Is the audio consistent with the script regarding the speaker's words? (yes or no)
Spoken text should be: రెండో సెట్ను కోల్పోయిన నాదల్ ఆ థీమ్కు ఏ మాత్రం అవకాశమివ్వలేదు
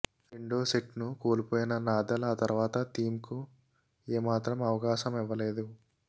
no